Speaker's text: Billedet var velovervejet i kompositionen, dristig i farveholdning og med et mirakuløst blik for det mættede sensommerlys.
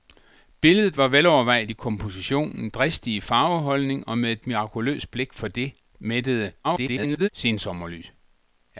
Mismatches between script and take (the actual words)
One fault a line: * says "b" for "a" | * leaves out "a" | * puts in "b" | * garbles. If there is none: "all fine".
* garbles